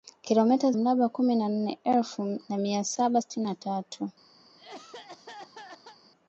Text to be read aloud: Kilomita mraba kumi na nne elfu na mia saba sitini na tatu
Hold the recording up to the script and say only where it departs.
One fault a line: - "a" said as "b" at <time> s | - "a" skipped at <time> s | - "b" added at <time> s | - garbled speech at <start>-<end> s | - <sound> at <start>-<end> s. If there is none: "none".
- cough at 4.4-6.0 s